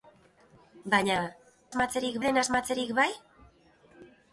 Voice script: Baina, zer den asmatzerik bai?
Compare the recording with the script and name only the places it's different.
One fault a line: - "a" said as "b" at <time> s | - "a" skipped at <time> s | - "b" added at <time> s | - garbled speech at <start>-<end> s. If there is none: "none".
- "zer" said as "asmatzerik" at 1.7 s